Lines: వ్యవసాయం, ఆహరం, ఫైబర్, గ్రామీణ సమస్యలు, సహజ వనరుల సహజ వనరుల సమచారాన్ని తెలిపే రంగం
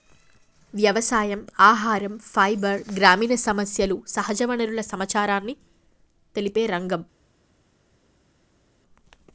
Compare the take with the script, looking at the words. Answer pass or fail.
fail